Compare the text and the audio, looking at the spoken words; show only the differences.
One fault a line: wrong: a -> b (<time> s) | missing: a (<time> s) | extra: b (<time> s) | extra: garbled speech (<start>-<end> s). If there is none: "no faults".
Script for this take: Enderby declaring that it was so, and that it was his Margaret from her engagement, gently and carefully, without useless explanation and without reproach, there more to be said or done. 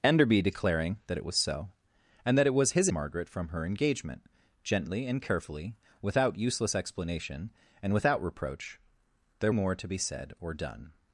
no faults